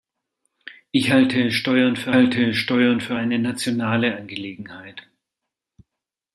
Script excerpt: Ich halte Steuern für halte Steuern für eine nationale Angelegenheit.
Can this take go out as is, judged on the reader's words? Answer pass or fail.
pass